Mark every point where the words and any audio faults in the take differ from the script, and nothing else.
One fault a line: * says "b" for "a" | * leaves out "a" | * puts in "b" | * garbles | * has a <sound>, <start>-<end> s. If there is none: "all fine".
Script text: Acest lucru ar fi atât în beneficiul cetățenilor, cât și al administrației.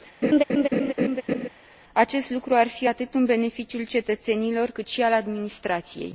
* has a laugh, 0.2-1.5 s